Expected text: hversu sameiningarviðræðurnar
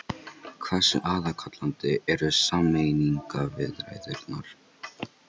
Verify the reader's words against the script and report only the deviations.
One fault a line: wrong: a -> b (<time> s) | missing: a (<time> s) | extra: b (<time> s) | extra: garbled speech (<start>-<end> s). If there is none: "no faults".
extra: aðkallandi eru (1.1 s)